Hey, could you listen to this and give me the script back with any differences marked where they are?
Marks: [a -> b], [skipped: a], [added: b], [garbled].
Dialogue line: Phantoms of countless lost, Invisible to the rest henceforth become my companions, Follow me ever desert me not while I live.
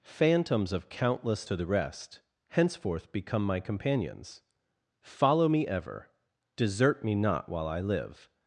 Phantoms of countless [skipped: lost, Invisible] to the rest henceforth become my companions, Follow me ever desert me not while I live.